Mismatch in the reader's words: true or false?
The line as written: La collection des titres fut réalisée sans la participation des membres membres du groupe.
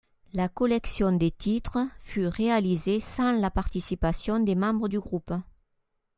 true